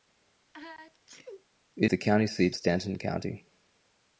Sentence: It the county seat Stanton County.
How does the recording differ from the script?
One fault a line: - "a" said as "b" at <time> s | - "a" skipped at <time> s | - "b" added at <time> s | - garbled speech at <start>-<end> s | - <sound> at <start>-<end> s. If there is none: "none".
- sneeze at 0.5-1.5 s